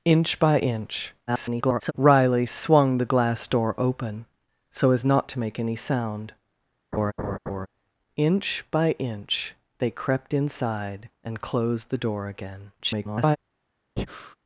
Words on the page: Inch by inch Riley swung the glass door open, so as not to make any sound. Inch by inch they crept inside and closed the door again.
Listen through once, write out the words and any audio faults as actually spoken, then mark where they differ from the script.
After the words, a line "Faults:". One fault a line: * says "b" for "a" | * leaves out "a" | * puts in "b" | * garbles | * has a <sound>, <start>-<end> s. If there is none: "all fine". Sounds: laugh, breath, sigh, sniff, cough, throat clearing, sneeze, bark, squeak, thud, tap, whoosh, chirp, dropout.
Inch by inch [garbled] Riley swung the glass door open, so as not to make any sound. Inch by inch they crept inside and closed the door again. [garbled]
Faults:
* garbles
* has a laugh, 6.9-7.7 s
* garbles
* has a breath, 14.0-14.4 s